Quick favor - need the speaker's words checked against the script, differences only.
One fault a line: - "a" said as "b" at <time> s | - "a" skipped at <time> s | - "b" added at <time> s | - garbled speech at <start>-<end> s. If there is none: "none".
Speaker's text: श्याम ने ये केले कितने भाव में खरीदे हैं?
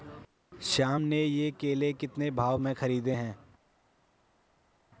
none